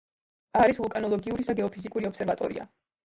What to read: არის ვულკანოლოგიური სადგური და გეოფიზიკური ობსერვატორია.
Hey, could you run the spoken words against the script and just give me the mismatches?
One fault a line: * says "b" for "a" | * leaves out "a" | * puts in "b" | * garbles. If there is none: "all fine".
* leaves out "სადგური"